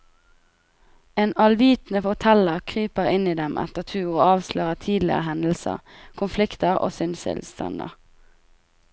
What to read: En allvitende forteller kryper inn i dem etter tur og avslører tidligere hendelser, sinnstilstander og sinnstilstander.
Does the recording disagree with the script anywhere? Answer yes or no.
yes